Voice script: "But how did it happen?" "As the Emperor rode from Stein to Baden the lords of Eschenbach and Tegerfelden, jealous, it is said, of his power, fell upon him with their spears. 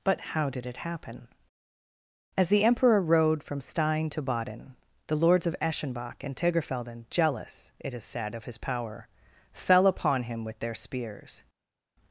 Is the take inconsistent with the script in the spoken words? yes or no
no